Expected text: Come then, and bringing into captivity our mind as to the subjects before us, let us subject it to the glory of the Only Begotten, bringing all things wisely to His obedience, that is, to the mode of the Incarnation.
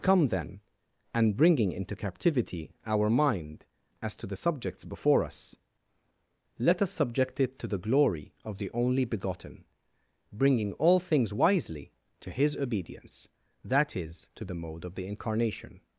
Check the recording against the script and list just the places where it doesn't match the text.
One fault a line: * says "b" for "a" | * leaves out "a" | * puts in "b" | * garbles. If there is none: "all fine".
all fine